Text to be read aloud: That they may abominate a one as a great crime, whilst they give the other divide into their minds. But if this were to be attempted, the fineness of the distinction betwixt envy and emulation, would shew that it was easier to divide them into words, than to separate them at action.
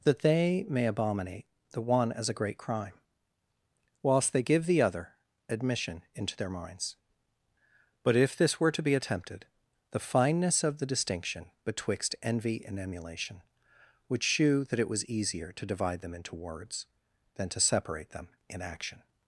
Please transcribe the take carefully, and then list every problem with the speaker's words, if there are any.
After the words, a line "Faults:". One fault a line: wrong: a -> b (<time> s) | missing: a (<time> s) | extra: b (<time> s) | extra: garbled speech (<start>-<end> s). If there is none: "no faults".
That they may abominate the one as a great crime, whilst they give the other admission into their minds. But if this were to be attempted, the fineness of the distinction betwixt envy and emulation, would shew that it was easier to divide them into words, than to separate them in action.
Faults:
wrong: a -> the (1.7 s)
wrong: divide -> admission (5.5 s)
wrong: at -> in (18.5 s)